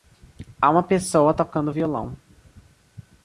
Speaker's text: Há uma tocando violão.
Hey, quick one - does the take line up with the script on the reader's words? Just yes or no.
no